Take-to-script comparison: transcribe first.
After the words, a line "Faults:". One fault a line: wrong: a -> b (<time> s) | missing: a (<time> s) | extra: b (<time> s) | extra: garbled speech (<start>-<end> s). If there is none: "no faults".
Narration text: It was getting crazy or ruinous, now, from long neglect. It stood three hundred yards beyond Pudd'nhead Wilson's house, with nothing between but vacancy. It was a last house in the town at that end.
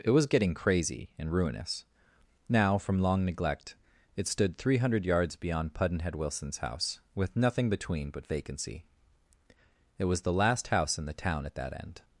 It was getting crazy and ruinous, now, from long neglect. It stood three hundred yards beyond Pudd'nhead Wilson's house, with nothing between but vacancy. It was the last house in the town at that end.
Faults:
wrong: or -> and (1.2 s)
wrong: a -> the (10.2 s)